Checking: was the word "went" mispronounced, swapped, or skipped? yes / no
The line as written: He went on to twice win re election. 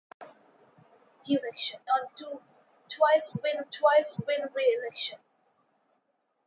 yes